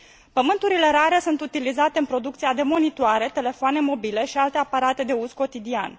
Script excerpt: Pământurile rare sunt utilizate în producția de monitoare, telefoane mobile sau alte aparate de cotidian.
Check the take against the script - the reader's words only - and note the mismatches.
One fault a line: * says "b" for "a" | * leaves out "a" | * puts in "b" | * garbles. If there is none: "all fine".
* says "și" for "sau"
* puts in "uz"